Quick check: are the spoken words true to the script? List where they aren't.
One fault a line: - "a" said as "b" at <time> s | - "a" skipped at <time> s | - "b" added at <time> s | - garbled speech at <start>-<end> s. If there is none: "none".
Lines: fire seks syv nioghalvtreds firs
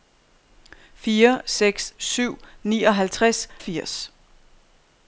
none